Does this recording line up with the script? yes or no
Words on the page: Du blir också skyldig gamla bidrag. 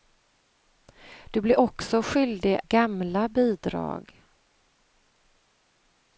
yes